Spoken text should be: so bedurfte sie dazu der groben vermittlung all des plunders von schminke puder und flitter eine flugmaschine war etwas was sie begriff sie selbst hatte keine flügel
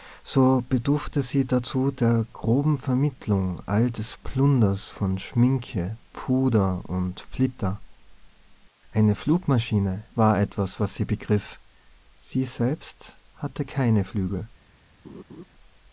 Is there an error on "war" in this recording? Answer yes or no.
no